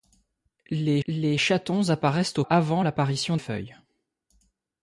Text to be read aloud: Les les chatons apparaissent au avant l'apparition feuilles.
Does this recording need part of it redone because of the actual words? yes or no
no